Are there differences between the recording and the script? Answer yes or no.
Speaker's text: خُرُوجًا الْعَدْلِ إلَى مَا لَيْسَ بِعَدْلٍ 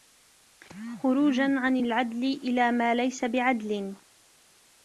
yes